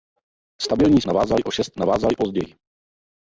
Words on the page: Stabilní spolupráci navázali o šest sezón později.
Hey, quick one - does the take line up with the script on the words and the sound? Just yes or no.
no